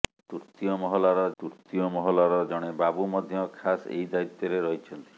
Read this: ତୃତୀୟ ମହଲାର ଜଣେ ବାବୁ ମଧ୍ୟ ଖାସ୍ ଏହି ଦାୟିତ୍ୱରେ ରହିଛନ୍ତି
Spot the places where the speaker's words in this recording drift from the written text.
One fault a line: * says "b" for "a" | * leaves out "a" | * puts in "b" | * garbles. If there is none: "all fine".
* puts in "ତୃତୀୟ ମହଲାର"